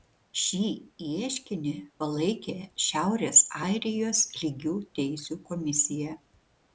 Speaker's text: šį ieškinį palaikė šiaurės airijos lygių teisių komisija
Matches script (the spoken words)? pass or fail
pass